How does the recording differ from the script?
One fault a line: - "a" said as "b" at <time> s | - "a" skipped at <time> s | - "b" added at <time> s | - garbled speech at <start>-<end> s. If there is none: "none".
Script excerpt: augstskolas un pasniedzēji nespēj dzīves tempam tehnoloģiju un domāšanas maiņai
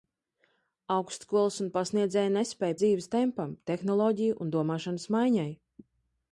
none